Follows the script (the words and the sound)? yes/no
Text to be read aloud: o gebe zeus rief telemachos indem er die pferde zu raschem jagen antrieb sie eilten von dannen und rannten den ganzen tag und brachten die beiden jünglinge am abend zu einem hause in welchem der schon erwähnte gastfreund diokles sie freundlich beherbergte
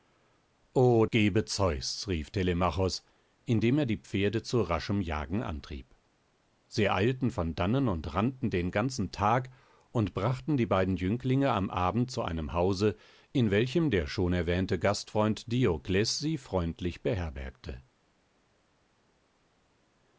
yes